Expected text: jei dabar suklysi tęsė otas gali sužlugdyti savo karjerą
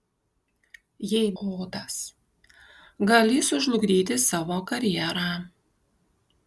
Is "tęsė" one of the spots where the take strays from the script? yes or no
yes